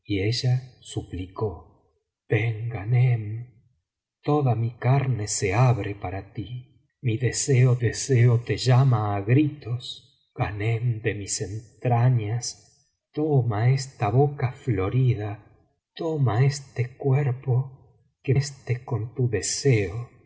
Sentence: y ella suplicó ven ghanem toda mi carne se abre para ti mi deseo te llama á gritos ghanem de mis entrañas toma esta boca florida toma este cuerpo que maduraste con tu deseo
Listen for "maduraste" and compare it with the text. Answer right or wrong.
wrong